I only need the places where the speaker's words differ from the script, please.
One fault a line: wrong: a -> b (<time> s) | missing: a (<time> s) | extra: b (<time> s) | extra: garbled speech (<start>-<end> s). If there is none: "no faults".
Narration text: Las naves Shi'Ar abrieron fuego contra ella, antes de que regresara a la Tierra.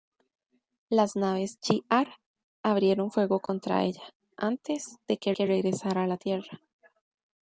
extra: que (5.3 s)